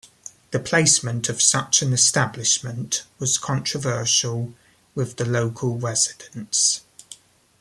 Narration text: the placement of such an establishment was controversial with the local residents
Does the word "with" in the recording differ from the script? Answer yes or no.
no